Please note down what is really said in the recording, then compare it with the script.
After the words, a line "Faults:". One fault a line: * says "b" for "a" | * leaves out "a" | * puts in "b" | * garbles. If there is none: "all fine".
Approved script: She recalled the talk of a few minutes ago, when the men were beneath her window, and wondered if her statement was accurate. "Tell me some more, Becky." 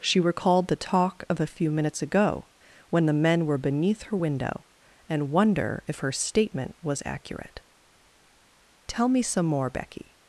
She recalled the talk of a few minutes ago, when the men were beneath her window, and wonder if her statement was accurate. "Tell me some more, Becky."
Faults:
* says "wonder" for "wondered"